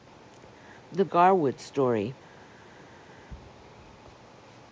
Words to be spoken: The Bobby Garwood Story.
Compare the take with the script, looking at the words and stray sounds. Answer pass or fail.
fail